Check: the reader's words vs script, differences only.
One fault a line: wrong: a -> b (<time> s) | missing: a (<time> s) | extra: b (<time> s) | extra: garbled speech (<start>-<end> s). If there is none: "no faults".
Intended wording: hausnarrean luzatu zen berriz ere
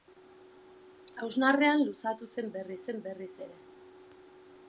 extra: zen berriz (2.9 s)